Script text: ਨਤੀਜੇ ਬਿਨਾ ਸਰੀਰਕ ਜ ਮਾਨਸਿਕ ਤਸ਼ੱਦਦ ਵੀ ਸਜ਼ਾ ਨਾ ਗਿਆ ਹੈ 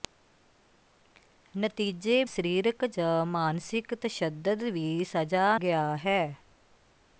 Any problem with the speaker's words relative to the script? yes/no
yes